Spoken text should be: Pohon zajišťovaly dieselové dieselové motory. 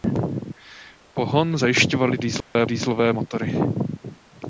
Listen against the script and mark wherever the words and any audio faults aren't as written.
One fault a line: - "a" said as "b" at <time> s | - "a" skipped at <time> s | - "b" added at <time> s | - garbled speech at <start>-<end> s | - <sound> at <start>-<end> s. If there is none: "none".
- dropout at 2.4-2.6 s